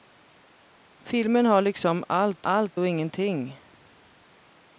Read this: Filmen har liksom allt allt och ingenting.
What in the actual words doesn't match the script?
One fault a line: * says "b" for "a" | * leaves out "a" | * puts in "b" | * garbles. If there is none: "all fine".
all fine